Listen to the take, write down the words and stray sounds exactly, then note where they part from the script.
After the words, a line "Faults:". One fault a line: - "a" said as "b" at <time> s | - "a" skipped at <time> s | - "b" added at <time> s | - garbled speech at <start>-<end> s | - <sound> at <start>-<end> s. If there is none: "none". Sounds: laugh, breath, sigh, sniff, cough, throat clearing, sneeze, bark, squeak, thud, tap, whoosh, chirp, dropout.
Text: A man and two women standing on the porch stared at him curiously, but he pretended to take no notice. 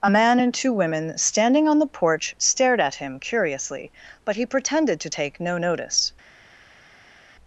A man and two women standing on the porch stared at him curiously, but he pretended to take no notice.
Faults:
none